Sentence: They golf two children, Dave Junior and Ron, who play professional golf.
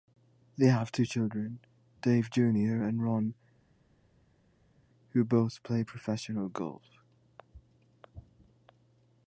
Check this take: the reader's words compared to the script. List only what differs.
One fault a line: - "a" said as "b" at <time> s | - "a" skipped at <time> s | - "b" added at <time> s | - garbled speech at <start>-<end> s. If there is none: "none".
- "golf" said as "have" at 0.7 s
- "both" added at 5.2 s